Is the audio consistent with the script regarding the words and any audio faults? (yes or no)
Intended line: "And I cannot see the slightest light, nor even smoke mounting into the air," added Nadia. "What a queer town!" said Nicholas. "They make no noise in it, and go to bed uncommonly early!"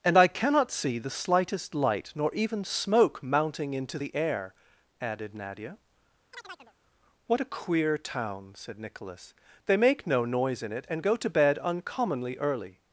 no